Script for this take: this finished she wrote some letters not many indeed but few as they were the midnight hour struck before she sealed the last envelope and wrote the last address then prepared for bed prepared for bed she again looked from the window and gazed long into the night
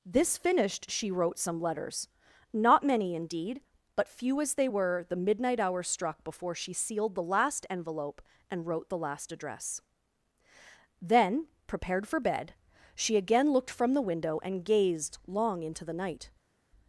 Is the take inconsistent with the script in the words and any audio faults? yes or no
yes